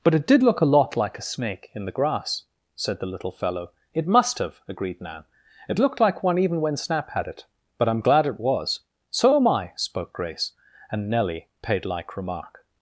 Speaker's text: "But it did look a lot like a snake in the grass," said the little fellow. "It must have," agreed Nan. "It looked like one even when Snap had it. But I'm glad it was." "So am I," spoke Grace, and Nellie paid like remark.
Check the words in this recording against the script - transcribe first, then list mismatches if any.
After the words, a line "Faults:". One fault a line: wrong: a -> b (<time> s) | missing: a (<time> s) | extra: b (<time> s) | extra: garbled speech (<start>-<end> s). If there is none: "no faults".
"But it did look a lot like a snake in the grass," said the little fellow. "It must have," agreed Nan. "It looked like one even when Snap had it. But I'm glad it was." "So am I," spoke Grace, and Nellie paid like remark.
Faults:
no faults